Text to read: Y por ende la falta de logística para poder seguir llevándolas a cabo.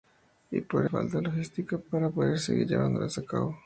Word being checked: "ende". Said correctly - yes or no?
no